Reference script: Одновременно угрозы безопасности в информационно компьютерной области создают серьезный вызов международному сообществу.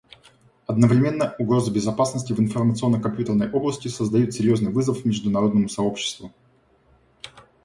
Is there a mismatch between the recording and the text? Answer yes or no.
no